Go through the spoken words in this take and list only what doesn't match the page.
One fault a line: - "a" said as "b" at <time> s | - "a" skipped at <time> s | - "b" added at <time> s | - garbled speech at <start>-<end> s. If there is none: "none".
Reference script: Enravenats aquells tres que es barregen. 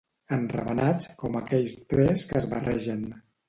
- "com" added at 1.2 s